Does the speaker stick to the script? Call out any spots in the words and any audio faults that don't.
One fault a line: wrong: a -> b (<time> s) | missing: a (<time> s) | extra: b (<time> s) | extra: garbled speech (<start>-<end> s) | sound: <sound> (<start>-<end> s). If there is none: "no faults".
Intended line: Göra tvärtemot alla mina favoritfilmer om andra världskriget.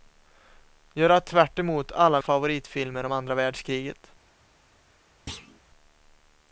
missing: mina (2.2 s)
sound: thud (5.3-5.6 s)